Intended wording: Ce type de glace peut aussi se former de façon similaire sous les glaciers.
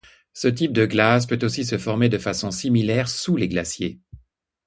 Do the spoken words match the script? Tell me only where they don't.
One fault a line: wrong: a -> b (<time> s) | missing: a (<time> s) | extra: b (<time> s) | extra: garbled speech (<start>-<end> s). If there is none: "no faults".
no faults